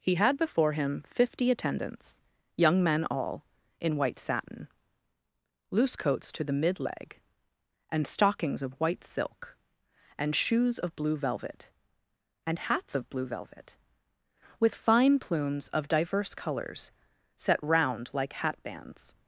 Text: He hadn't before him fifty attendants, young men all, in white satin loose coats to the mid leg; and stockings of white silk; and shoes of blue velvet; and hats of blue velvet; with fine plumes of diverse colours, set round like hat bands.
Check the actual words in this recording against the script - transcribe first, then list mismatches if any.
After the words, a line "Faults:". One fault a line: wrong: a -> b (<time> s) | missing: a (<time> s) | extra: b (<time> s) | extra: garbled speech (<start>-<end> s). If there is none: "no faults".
He had before him fifty attendants, young men all, in white satin loose coats to the mid leg; and stockings of white silk; and shoes of blue velvet; and hats of blue velvet; with fine plumes of diverse colours, set round like hat bands.
Faults:
wrong: hadn't -> had (0.1 s)